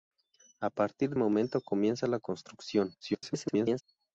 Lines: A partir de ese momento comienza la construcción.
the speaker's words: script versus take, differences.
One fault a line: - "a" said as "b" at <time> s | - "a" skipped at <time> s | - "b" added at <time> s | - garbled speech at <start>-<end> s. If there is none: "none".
- "de ese" skipped at 1.1 s
- garbled speech at 3.0-3.8 s